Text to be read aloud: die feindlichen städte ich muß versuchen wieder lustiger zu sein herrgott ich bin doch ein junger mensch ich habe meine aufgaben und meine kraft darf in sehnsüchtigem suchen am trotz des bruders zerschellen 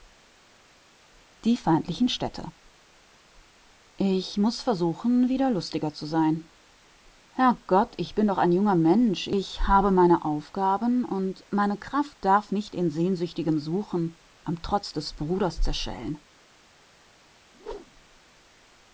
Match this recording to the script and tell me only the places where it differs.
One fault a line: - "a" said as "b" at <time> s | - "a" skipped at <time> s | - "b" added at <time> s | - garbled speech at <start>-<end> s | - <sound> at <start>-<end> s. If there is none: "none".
- "nicht" added at 12.5 s
- whoosh at 17.5-18.2 s